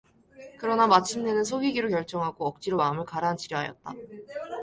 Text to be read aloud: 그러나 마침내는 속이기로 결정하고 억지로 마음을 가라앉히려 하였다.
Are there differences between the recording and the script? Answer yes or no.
no